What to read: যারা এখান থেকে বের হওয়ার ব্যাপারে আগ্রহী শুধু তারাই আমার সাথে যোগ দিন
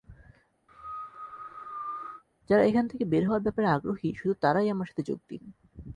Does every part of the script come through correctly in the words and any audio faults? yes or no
no